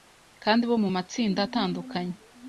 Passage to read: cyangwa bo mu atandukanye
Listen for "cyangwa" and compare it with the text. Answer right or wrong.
wrong